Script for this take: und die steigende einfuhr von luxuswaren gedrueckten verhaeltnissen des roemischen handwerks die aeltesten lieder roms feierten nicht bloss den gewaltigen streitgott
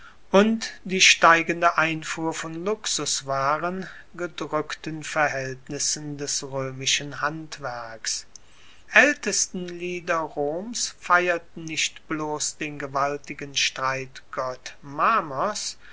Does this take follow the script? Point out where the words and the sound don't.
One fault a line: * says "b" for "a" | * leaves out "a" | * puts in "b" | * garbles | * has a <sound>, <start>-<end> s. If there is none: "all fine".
* leaves out "die"